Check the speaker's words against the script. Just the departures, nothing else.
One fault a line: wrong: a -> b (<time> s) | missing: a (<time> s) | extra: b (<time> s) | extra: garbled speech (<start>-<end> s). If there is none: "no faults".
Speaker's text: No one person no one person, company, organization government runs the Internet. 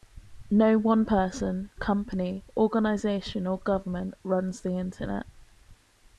missing: no one person (1.7 s)
extra: or (3.5 s)